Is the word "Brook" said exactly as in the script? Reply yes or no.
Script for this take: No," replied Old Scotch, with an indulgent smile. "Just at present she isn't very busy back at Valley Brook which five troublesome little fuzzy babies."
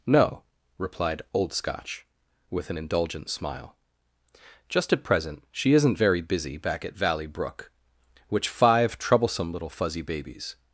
yes